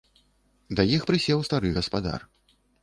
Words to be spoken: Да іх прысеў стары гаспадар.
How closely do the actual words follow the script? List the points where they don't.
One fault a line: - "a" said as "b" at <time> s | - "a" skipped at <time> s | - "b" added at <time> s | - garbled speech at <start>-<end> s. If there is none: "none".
none